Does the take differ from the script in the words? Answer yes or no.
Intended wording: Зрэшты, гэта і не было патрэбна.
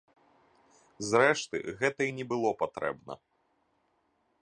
no